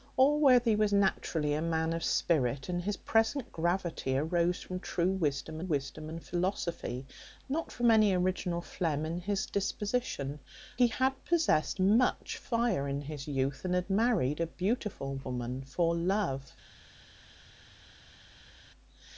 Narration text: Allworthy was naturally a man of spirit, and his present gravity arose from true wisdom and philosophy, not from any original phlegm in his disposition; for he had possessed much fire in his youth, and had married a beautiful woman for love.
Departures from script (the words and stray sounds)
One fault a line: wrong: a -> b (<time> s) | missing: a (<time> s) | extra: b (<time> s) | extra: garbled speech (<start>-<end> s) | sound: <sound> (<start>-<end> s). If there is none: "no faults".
extra: wisdom (5.6 s)
missing: for (10.4 s)